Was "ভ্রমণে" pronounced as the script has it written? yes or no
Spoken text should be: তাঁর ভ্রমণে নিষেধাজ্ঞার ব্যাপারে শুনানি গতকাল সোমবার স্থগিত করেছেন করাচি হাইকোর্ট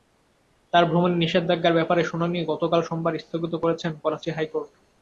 yes